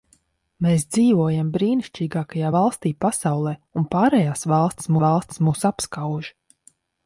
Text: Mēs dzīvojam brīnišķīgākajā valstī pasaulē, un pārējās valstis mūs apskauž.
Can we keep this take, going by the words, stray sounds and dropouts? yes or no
no